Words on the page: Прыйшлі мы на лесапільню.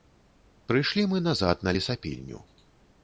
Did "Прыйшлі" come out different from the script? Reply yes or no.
no